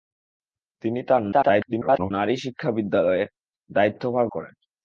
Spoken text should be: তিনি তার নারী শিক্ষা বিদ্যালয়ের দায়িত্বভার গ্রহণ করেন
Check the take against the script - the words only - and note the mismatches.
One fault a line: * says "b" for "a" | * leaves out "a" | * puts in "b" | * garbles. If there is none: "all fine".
* garbles
* leaves out "গ্রহণ"